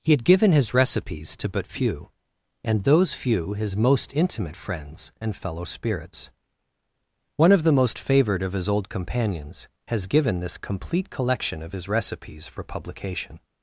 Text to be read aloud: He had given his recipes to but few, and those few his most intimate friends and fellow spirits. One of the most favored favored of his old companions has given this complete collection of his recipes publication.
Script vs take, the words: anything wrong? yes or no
yes